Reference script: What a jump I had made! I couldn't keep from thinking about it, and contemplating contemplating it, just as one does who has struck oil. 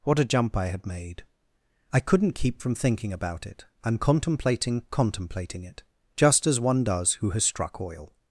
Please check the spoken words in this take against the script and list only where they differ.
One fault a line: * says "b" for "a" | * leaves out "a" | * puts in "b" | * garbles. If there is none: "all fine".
all fine